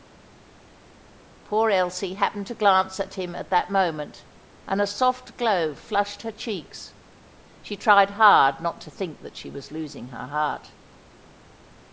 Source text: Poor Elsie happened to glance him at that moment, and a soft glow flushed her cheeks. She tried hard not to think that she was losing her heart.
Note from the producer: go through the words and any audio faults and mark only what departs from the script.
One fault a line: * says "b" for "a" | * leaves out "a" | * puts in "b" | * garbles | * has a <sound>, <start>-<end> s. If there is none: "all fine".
* puts in "at"